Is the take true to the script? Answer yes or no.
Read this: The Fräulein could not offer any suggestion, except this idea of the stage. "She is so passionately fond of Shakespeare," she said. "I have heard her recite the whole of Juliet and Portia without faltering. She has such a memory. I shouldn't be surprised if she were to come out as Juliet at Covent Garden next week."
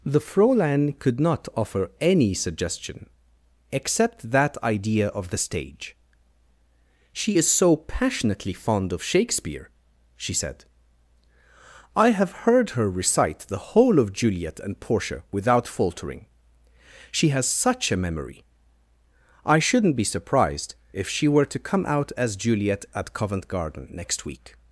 no